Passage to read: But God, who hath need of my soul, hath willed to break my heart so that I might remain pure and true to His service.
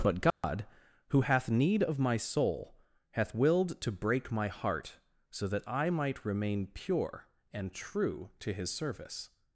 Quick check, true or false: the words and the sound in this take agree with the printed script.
false